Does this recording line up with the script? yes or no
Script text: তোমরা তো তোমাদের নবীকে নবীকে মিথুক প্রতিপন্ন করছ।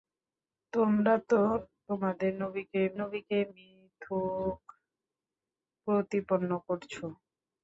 yes